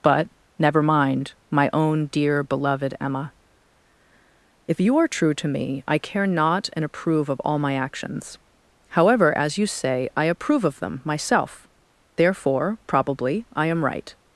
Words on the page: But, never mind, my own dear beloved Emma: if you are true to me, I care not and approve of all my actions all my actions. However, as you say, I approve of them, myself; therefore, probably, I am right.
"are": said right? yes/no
yes